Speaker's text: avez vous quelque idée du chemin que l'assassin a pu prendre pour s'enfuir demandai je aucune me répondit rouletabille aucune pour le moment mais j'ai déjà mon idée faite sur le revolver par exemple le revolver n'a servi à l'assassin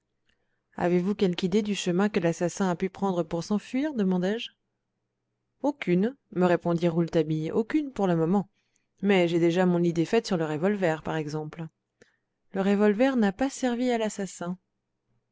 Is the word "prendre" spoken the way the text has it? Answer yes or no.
yes